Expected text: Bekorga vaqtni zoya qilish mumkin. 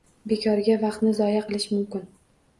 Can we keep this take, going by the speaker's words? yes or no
yes